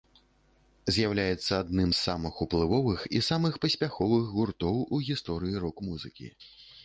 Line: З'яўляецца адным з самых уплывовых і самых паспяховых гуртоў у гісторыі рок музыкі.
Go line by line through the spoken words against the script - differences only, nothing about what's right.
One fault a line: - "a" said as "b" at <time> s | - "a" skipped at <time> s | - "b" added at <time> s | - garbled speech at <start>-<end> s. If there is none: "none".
none